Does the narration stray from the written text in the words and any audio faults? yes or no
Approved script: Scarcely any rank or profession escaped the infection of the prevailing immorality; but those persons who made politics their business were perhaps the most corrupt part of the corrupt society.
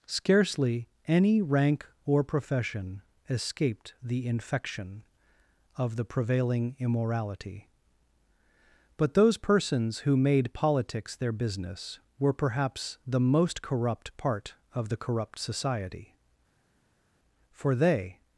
yes